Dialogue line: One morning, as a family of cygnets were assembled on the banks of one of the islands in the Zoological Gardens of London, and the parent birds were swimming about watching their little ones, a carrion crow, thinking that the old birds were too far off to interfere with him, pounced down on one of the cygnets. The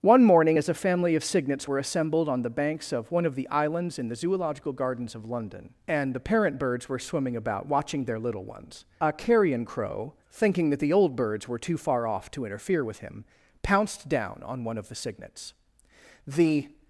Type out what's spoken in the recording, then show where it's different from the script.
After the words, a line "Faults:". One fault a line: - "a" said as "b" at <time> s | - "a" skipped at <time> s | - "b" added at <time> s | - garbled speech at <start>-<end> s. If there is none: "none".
One morning, as a family of cygnets were assembled on the banks of one of the islands in the Zoological Gardens of London, and the parent birds were swimming about watching their little ones, a carrion crow, thinking that the old birds were too far off to interfere with him, pounced down on one of the cygnets. The
Faults:
none